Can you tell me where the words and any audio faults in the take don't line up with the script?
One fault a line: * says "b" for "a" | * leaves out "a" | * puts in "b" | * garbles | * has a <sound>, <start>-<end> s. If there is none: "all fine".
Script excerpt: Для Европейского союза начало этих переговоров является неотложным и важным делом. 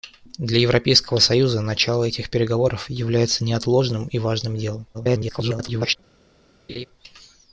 * garbles
* has a laugh, 6.7-6.9 s